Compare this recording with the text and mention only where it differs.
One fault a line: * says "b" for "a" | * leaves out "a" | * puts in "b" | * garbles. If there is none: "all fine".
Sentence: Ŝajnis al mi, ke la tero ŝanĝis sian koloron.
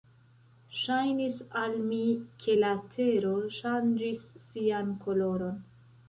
all fine